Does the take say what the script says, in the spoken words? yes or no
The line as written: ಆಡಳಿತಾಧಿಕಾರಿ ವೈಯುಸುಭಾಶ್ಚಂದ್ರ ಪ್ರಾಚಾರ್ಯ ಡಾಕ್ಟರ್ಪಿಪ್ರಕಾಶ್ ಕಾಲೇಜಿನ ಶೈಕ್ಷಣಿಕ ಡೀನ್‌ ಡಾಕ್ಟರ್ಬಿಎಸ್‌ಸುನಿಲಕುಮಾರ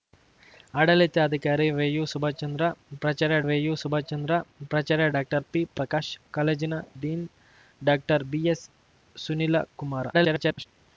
no